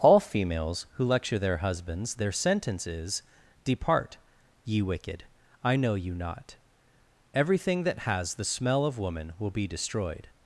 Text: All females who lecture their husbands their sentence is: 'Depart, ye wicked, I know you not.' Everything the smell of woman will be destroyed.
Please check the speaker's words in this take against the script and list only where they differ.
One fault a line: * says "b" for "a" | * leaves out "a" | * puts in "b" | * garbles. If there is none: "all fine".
* puts in "that has"